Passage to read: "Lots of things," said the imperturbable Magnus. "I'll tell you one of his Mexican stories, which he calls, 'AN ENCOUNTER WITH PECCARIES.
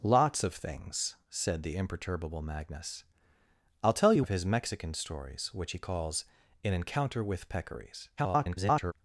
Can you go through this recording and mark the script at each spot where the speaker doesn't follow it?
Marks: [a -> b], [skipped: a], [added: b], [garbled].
"Lots of things," said the imperturbable Magnus. "I'll tell you [skipped: one] of his Mexican stories, which he calls, 'AN ENCOUNTER WITH PECCARIES. [garbled]